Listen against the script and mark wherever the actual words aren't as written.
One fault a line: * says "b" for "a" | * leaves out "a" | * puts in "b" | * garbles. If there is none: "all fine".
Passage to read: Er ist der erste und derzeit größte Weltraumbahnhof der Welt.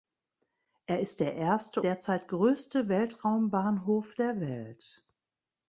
* leaves out "und"